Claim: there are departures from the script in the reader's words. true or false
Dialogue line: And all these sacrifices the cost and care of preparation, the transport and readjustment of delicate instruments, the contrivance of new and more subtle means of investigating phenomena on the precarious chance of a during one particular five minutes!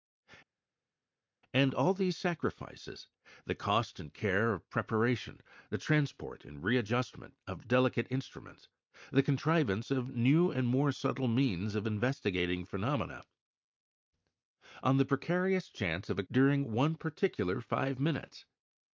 false